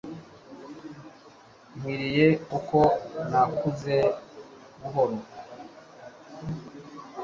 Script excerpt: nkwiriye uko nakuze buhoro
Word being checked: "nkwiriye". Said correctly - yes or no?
yes